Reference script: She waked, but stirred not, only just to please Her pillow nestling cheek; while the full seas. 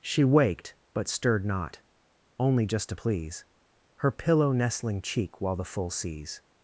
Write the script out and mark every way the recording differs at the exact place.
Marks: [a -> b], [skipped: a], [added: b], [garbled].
She waked, but stirred not, only just to please Her pillow nestling cheek; while the full seas.